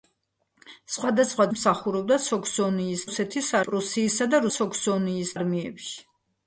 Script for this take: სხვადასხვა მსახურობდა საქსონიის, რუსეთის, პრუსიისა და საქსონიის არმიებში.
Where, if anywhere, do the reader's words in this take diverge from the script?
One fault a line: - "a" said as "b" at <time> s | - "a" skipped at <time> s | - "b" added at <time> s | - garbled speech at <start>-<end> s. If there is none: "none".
none